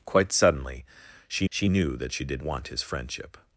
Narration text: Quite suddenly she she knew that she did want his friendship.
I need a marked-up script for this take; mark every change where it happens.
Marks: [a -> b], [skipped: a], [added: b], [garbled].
Quite suddenly she she knew that she did want his friendship.